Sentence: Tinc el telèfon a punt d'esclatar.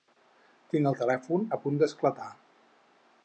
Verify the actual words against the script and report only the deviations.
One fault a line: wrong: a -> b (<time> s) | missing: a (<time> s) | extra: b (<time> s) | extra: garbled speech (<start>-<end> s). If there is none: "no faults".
no faults